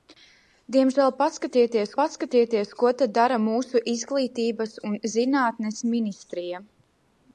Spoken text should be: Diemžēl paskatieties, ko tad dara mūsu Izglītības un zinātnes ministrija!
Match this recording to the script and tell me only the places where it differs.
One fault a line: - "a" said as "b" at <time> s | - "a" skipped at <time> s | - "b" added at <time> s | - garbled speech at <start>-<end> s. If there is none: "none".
- "paskatieties" added at 2.0 s